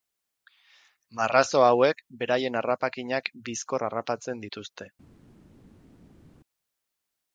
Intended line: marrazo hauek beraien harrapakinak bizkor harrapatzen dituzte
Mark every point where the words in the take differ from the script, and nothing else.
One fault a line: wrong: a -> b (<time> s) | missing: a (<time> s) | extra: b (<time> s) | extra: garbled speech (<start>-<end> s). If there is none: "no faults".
no faults